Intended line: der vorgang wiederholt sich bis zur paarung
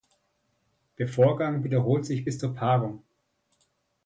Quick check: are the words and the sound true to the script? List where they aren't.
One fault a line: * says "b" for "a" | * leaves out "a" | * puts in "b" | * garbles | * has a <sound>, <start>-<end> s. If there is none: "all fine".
all fine